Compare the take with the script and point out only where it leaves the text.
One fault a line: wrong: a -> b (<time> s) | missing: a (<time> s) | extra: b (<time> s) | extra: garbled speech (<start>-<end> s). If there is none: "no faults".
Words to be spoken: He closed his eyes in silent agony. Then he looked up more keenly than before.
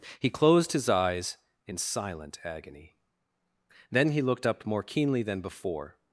no faults